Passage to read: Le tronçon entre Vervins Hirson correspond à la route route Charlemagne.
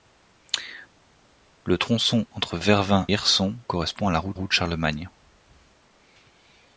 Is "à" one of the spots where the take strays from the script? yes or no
no